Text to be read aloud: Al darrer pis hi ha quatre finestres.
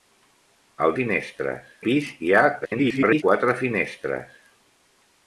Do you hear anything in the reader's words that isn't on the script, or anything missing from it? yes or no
yes